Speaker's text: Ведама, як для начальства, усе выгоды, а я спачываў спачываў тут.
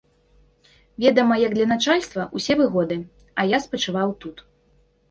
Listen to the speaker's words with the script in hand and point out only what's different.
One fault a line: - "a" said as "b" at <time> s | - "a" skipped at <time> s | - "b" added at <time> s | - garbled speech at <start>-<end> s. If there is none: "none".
- "спачываў" skipped at 4.1 s